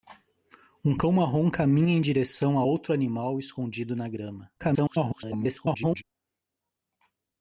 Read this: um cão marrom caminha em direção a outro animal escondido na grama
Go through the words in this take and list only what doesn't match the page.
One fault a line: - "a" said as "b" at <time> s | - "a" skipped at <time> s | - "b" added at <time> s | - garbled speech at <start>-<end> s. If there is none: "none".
- garbled speech at 4.6-6.0 s